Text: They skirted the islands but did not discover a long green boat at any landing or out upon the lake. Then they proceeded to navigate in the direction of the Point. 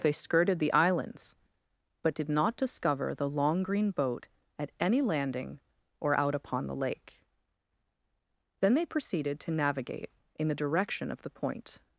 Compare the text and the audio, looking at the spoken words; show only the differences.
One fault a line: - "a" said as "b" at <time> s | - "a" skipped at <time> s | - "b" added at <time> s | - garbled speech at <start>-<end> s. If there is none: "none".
- "a" said as "the" at 3.1 s